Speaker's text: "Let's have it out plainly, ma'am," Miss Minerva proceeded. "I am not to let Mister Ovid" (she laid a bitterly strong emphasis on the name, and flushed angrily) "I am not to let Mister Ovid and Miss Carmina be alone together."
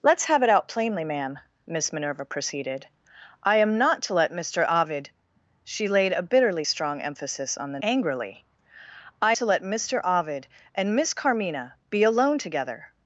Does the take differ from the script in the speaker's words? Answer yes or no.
yes